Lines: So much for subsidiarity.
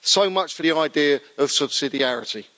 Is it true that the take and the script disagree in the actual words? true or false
true